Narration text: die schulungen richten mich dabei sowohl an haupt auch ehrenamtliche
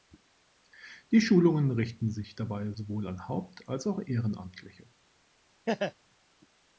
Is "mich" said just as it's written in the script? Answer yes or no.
no